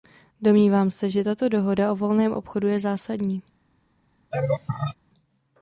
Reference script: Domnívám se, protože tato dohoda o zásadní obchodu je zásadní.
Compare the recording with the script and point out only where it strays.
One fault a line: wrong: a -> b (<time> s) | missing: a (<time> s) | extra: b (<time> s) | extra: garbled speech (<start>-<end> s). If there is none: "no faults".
wrong: protože -> že (1.1 s)
wrong: zásadní -> volném (2.0 s)